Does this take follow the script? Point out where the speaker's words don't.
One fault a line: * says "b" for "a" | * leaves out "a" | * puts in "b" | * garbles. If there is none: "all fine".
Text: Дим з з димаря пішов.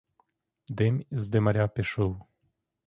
* leaves out "з"